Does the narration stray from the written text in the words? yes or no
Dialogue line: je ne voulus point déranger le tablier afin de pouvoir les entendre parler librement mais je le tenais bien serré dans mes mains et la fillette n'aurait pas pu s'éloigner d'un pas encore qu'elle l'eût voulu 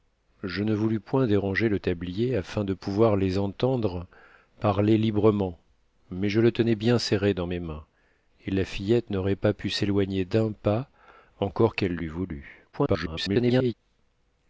yes